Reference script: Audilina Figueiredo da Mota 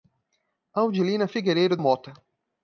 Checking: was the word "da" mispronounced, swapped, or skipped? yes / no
yes